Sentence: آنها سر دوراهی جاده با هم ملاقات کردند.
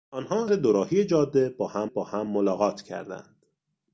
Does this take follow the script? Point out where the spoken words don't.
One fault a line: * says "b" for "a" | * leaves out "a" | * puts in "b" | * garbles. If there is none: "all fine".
* leaves out "سر"
* puts in "با هم"